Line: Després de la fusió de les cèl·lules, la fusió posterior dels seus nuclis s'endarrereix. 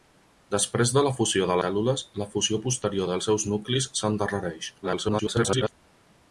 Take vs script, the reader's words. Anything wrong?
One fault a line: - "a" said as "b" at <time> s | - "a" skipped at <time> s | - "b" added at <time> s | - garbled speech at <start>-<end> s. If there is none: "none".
- "les" skipped at 1.6 s
- garbled speech at 4.8-5.7 s